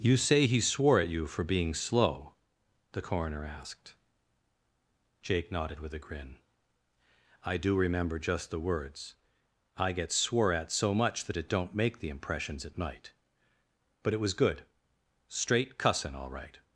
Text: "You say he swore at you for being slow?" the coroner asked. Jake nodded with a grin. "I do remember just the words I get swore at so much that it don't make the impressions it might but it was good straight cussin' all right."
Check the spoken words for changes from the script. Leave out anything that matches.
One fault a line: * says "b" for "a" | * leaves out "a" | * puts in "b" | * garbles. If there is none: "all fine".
all fine